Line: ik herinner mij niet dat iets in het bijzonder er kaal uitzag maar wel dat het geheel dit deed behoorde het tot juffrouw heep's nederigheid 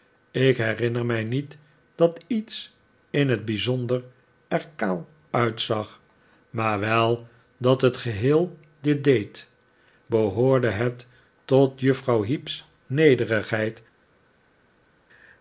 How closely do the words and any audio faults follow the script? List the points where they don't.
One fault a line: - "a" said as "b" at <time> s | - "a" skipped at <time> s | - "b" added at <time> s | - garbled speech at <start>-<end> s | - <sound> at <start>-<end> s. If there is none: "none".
none